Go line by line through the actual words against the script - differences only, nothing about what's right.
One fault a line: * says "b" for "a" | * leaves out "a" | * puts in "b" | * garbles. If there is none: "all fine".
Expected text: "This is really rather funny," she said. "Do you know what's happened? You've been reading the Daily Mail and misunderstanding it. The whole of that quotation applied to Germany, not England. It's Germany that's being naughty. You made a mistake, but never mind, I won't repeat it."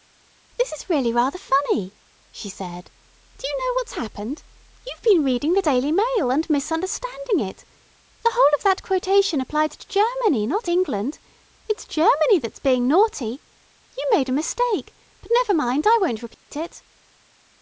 all fine